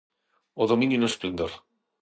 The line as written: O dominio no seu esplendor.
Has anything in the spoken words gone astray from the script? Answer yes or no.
yes